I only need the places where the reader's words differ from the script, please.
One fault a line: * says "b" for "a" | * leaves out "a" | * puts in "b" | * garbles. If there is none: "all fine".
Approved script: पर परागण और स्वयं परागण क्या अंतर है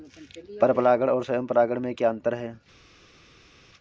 * puts in "में"